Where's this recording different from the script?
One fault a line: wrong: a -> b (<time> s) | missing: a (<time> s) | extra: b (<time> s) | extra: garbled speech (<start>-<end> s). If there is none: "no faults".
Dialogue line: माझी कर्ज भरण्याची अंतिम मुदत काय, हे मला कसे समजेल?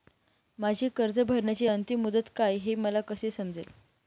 no faults